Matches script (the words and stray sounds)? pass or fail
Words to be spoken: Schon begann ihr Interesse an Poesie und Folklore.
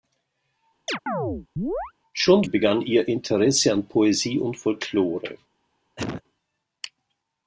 fail